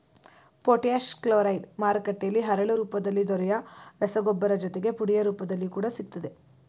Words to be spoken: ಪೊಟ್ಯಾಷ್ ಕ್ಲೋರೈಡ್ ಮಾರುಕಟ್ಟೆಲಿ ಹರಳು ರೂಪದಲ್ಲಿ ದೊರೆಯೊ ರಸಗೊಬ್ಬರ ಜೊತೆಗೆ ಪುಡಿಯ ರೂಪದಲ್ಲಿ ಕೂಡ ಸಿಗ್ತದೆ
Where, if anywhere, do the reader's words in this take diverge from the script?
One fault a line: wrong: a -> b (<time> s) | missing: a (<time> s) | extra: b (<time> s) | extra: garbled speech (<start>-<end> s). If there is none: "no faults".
no faults